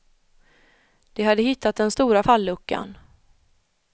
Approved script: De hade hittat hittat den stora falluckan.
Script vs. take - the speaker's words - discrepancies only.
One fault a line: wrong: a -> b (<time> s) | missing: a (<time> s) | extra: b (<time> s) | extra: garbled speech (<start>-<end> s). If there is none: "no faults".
missing: hittat (1.8 s)